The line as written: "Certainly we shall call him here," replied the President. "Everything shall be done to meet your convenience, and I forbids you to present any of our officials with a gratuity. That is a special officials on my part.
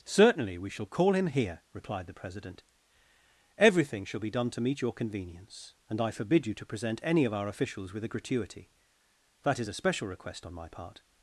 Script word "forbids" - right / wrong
wrong